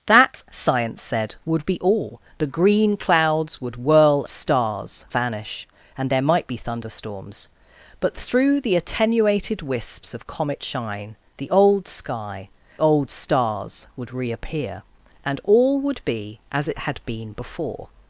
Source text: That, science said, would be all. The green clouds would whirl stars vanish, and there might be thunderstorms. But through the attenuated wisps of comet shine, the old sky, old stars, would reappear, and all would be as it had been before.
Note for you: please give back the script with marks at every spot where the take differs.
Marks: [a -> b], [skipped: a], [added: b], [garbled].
That, science said, would be all. The green clouds would whirl stars vanish, and there might be thunderstorms. But through the attenuated wisps of comet shine, the old sky, old stars, would reappear, and all would be as it had been before.